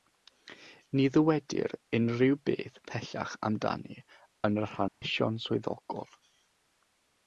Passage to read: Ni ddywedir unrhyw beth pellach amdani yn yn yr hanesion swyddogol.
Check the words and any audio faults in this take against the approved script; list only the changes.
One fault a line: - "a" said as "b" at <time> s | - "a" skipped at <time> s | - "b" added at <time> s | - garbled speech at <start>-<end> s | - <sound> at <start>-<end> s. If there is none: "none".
- "yn" skipped at 4.6 s
- dropout at 4.9-5.0 s